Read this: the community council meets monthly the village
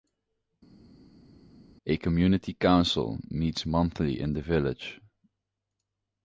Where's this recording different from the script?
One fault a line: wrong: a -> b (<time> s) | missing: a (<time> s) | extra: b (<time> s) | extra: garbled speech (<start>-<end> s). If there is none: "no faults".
wrong: the -> a (1.9 s)
extra: in (4.2 s)